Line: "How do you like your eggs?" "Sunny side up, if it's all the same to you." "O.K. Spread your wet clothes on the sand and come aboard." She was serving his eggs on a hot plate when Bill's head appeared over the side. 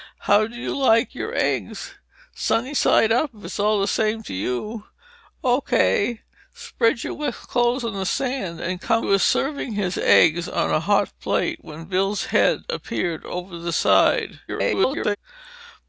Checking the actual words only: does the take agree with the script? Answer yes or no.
no